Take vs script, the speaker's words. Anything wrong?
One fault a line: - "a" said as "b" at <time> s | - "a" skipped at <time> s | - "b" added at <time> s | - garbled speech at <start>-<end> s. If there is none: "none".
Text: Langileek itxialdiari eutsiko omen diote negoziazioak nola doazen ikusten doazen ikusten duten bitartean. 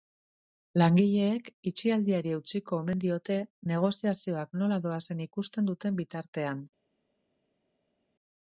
- "doazen ikusten" skipped at 5.7 s